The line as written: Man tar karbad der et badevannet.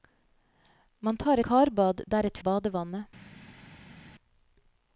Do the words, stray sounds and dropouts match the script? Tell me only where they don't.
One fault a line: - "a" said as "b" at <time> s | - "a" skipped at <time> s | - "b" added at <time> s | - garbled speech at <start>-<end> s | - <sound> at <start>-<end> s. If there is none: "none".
none